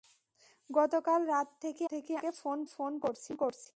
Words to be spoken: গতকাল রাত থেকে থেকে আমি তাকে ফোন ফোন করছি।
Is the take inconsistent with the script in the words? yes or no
no